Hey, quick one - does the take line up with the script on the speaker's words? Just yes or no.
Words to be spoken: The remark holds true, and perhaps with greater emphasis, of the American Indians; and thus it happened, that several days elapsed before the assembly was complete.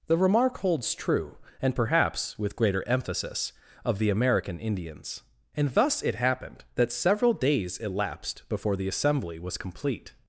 yes